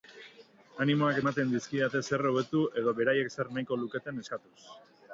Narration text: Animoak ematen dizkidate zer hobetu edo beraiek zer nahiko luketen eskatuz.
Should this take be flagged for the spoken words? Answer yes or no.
no